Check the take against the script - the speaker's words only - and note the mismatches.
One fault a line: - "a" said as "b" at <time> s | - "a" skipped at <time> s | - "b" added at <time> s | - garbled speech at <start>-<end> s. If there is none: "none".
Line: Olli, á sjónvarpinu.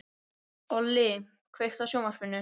- "kveiktu" added at 1.6 s